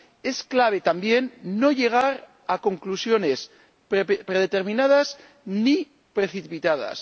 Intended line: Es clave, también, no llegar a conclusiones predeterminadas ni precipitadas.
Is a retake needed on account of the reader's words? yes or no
no